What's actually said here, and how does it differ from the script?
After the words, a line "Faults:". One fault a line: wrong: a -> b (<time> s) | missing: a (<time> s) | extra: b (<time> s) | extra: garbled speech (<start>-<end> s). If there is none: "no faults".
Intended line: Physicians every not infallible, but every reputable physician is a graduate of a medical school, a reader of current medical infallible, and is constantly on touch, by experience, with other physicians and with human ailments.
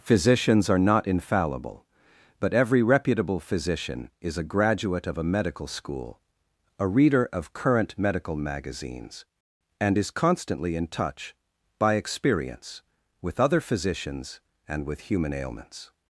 Physicians are not infallible, but every reputable physician is a graduate of a medical school, a reader of current medical magazines, and is constantly in touch, by experience, with other physicians and with human ailments.
Faults:
wrong: every -> are (0.7 s)
wrong: infallible -> magazines (8.3 s)
wrong: on -> in (10.8 s)